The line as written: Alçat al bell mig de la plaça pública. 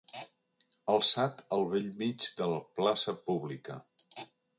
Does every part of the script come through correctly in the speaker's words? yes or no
yes